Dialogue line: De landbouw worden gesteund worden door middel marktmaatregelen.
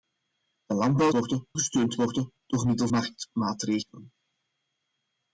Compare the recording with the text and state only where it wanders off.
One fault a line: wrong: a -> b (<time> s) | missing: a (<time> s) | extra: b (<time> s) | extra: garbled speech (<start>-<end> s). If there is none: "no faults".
no faults